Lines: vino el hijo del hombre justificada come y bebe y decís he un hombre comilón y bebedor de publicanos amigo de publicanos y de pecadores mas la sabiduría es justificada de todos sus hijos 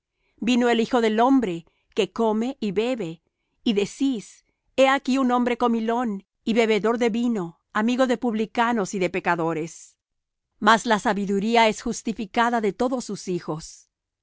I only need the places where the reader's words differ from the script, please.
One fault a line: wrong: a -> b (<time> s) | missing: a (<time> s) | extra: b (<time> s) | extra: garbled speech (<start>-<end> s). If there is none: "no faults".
wrong: justificada -> que (1.9 s)
extra: aquí (4.9 s)
wrong: publicanos -> vino (7.1 s)